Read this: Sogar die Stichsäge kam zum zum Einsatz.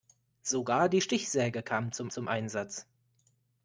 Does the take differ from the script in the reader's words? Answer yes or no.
no